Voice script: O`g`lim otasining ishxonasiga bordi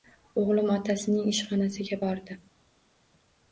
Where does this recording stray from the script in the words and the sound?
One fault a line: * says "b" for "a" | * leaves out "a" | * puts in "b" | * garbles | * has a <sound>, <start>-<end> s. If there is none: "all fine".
all fine